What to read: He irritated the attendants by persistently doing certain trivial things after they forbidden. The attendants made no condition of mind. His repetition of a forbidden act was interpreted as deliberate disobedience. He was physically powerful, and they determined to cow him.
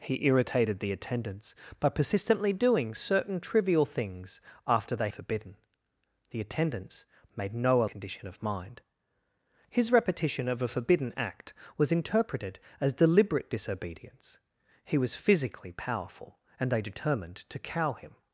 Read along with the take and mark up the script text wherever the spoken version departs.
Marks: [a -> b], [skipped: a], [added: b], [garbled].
He irritated the attendants by persistently doing certain trivial things after they forbidden. The attendants made no condition of mind. His repetition of a forbidden act was interpreted as deliberate disobedience. He was physically powerful, and they determined to cow him.